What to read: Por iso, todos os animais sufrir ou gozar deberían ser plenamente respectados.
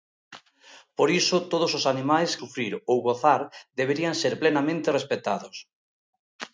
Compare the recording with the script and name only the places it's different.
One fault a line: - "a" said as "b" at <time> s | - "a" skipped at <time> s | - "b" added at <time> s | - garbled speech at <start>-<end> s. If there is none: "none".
none